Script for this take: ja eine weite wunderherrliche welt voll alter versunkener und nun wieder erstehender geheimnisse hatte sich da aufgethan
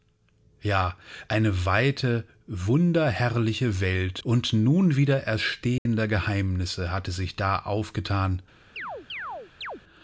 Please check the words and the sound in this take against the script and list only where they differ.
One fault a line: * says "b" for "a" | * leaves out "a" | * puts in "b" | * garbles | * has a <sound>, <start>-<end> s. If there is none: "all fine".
* leaves out "voll alter versunkener"
* has a dropout, 5.8-5.9 s
* has a chirp, 8.8-9.8 s